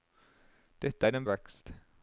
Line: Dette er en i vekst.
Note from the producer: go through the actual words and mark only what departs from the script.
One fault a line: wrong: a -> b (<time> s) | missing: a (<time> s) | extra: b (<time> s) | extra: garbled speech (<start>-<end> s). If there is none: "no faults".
no faults